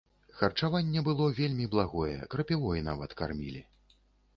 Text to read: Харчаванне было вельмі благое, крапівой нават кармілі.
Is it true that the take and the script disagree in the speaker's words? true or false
false